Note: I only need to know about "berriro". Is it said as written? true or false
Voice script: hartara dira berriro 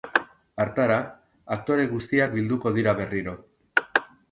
true